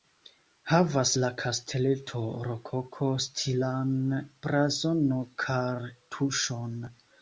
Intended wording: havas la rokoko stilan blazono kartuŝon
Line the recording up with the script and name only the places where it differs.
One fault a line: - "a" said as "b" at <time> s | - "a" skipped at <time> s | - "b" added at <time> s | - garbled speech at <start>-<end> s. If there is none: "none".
- "kasteleto" added at 1.4 s